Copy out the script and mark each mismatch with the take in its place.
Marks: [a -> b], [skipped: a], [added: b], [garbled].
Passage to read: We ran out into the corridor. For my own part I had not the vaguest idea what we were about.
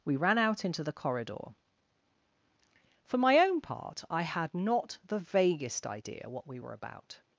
We ran out into the corridor. For my own part I had not the vaguest idea what we were about.